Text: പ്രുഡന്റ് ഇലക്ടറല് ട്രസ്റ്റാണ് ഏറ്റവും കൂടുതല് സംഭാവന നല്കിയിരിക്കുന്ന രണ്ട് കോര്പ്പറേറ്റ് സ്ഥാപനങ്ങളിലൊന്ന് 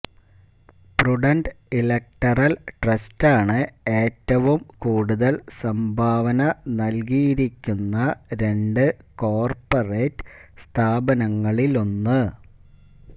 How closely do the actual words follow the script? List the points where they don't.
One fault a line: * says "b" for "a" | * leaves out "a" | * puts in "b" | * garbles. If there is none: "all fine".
all fine